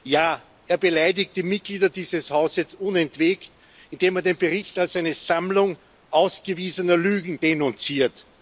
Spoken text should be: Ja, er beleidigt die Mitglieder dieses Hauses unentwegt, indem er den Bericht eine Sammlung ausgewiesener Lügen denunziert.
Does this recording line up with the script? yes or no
no